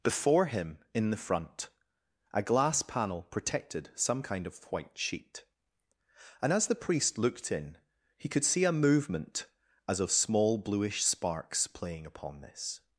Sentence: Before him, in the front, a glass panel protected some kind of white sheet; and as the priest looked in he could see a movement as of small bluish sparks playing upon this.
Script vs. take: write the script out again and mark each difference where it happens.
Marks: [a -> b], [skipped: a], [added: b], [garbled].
Before him, in the front, a glass panel protected some kind of white sheet; and as the priest looked in he could see a movement as of small bluish sparks playing upon this.